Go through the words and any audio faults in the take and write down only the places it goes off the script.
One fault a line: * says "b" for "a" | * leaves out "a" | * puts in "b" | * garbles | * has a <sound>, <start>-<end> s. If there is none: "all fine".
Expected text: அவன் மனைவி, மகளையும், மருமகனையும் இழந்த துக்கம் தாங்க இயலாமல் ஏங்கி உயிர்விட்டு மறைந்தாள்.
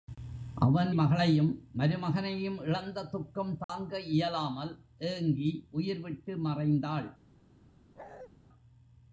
* leaves out "மனைவி"
* has a dropout, 3.6-3.7 s
* has a bark, 8.0-8.3 s